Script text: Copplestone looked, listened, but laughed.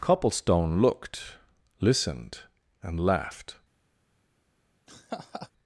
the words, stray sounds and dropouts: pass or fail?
fail